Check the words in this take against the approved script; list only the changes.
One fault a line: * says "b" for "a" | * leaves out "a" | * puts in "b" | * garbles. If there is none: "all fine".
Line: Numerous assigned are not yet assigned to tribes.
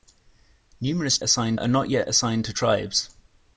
all fine